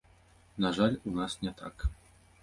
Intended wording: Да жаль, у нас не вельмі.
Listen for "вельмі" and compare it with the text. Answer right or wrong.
wrong